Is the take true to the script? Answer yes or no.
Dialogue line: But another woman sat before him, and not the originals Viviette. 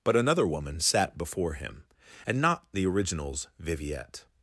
yes